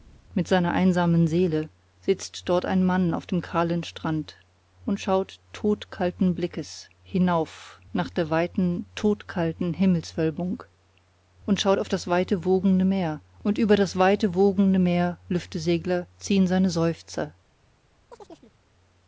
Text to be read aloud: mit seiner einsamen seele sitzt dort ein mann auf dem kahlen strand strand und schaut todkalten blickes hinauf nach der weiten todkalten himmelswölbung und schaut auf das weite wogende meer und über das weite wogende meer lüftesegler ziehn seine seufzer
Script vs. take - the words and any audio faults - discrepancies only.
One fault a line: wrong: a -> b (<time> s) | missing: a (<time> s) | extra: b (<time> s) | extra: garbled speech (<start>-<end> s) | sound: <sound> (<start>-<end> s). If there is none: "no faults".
missing: strand (4.4 s)
sound: chirp (18.1-18.5 s)